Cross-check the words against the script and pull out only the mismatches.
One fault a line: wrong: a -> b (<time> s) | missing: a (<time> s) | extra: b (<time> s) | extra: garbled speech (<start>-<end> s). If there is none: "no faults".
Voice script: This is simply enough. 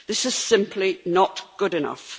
extra: not good (1.1 s)